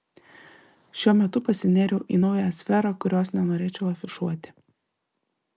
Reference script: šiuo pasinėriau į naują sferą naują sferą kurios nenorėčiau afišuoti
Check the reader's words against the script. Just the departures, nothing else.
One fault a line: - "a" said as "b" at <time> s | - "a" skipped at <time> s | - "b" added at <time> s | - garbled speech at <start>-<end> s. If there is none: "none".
- "metu" added at 1.2 s
- "naują sferą" skipped at 2.9 s